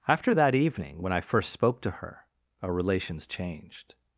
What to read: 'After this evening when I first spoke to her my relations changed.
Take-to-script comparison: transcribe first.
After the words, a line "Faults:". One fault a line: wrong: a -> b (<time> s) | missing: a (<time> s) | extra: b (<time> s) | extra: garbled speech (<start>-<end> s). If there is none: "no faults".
'After that evening when I first spoke to her our relations changed.
Faults:
wrong: this -> that (0.3 s)
wrong: my -> our (2.6 s)